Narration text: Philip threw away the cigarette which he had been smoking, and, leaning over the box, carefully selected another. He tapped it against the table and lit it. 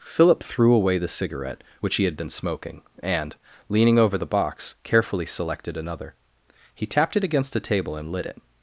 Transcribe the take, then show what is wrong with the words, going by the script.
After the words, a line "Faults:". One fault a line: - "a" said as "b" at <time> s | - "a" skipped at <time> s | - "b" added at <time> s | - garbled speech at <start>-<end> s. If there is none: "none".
Philip threw away the cigarette which he had been smoking, and, leaning over the box, carefully selected another. He tapped it against a table and lit it.
Faults:
- "the" said as "a" at 7.5 s